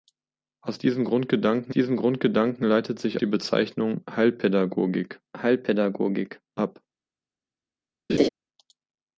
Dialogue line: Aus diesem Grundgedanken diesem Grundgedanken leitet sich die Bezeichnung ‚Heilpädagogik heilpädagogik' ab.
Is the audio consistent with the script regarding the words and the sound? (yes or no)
no